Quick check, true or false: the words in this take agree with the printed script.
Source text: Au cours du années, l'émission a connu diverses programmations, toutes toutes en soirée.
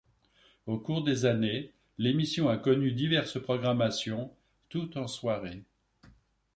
false